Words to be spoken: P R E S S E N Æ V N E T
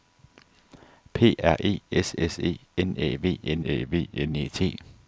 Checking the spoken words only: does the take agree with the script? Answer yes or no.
no